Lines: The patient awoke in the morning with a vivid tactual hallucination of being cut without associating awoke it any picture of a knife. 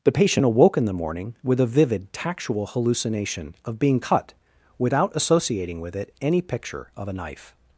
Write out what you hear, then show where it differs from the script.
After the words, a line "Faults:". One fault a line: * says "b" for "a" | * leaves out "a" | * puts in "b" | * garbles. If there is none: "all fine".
The patient awoke in the morning with a vivid tactual hallucination of being cut without associating with it any picture of a knife.
Faults:
* says "with" for "awoke"